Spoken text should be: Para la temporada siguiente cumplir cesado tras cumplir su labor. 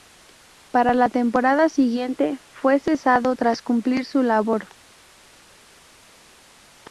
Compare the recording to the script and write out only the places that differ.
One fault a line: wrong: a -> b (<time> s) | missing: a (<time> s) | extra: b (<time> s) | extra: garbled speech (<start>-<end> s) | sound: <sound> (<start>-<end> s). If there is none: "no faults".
wrong: cumplir -> fue (2.5 s)